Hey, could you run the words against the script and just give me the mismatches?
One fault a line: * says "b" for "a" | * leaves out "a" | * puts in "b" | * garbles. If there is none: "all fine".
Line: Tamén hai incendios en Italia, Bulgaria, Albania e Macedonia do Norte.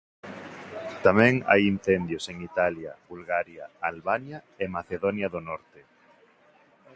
all fine